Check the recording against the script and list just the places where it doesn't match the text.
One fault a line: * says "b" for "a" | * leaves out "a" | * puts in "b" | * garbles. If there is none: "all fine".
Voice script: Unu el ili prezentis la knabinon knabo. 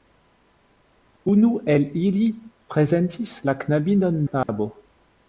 all fine